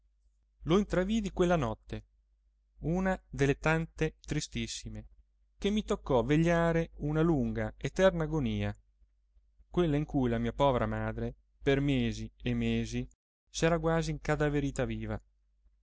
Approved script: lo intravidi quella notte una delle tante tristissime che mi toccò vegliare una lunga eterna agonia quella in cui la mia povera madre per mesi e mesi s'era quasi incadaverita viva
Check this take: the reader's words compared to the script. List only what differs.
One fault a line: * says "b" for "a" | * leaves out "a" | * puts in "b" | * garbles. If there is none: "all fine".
all fine